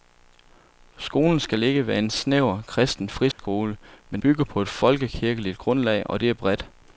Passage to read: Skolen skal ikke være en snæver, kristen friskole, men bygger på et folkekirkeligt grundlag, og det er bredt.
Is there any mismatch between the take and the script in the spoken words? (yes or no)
no